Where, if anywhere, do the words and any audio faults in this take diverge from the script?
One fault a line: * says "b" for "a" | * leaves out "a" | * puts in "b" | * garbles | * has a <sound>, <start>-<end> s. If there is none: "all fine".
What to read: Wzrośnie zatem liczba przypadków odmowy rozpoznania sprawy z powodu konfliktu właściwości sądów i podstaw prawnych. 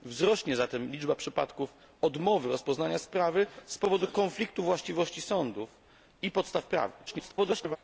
* garbles